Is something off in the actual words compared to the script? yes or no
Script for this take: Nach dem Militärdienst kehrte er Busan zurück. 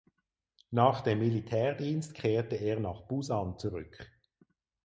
yes